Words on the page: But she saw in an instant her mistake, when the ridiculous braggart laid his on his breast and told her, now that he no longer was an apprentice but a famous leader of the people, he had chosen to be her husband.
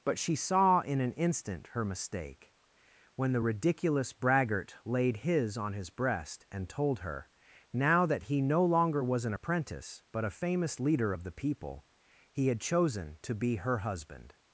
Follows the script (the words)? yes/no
yes